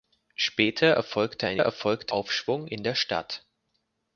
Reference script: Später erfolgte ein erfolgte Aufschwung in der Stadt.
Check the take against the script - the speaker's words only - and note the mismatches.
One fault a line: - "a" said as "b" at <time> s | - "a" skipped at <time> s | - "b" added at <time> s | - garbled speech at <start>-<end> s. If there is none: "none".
none